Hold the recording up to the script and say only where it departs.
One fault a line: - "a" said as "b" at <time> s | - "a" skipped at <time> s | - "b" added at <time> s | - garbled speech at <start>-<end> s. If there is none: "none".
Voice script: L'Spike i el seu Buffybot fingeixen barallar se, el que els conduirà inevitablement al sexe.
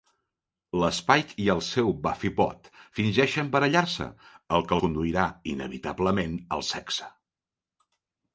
- "els" skipped at 4.8 s